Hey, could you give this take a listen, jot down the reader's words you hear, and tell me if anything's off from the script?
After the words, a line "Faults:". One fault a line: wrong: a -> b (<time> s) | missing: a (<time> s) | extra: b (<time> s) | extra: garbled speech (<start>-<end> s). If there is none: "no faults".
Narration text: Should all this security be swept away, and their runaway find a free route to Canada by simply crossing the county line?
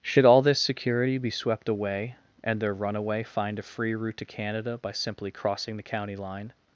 Should all this security be swept away, and their runaway find a free route to Canada by simply crossing the county line?
Faults:
no faults